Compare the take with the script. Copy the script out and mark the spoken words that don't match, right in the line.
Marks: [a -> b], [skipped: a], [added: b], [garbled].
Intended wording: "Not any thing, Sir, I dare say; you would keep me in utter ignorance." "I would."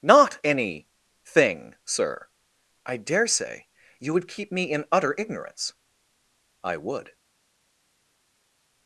"Not any thing, Sir, I dare say; you would keep me in utter ignorance." "I would."